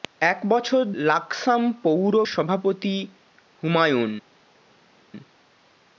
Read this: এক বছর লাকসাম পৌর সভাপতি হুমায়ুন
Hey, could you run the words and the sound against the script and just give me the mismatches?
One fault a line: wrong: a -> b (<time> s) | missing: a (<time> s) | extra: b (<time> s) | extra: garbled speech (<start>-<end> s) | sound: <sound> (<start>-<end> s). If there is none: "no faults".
no faults